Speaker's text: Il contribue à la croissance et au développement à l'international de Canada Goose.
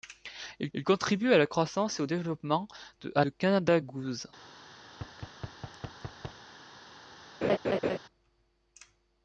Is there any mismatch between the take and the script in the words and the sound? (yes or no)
yes